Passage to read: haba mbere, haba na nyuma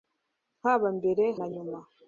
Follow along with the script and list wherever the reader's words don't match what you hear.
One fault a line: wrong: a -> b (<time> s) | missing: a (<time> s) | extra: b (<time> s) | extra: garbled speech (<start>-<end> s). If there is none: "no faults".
missing: haba (1.2 s)